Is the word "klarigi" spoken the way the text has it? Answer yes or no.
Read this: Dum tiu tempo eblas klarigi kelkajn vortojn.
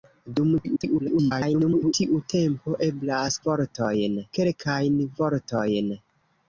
no